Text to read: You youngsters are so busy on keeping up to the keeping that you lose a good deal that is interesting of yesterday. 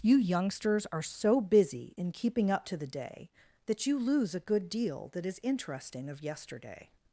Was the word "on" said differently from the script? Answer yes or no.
yes